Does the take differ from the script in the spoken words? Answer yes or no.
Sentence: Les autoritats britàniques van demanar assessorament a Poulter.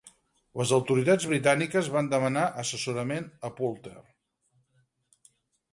no